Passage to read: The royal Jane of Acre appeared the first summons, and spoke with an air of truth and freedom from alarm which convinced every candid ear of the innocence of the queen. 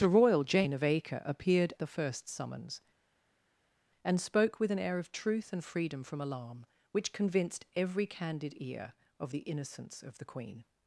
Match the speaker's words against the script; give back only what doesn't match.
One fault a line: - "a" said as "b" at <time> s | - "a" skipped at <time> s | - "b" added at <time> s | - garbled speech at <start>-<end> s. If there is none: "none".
none